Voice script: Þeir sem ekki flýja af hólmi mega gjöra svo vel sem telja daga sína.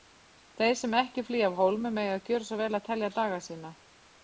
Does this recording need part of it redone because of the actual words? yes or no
yes